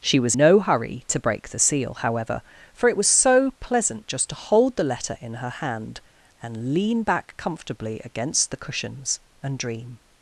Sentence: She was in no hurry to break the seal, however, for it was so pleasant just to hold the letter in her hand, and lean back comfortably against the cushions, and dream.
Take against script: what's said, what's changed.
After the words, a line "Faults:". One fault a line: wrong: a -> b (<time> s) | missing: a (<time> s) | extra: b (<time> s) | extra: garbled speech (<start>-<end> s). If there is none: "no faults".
She was no hurry to break the seal, however, for it was so pleasant just to hold the letter in her hand, and lean back comfortably against the cushions, and dream.
Faults:
missing: in (0.3 s)